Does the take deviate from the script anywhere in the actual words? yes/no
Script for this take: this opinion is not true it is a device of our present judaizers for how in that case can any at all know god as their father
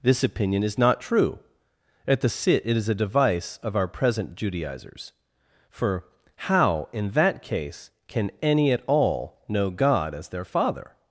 yes